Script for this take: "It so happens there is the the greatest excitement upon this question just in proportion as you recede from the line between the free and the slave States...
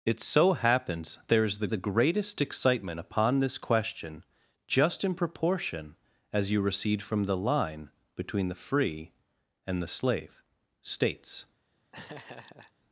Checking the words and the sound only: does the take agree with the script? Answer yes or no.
no